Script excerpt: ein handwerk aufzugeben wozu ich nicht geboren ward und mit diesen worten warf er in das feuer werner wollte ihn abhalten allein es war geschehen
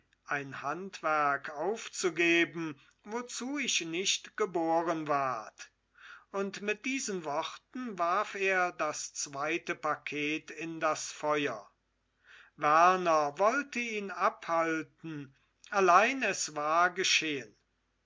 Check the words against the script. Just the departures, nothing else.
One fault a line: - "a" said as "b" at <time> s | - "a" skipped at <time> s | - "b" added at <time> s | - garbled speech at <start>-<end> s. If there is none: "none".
- "das zweite paket" added at 8.7 s